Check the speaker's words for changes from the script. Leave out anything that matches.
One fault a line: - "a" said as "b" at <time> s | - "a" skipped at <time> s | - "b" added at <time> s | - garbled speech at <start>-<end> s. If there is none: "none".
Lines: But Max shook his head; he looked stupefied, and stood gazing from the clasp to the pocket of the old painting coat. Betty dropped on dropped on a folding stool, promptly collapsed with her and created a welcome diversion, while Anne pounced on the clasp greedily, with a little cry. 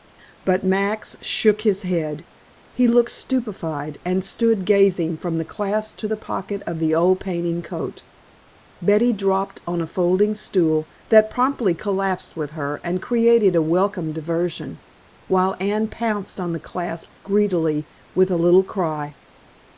- "dropped on" skipped at 9.8 s
- "that" added at 11.1 s